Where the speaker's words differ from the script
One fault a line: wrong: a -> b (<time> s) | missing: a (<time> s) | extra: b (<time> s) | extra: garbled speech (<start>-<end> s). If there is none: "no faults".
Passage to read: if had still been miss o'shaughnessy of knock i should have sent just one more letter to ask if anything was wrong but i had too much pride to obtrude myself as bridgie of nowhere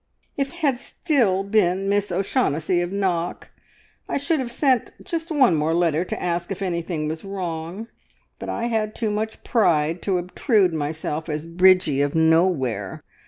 no faults